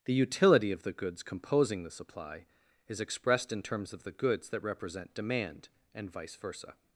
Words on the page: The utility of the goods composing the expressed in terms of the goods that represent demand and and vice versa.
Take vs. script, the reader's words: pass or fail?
fail